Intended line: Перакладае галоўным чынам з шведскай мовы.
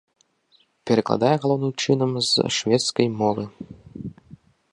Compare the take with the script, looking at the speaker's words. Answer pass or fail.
pass